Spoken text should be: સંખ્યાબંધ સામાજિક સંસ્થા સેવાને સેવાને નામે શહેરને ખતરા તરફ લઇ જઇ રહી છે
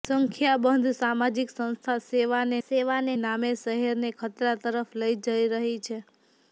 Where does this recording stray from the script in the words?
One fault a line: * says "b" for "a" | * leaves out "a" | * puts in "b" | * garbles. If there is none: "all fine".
all fine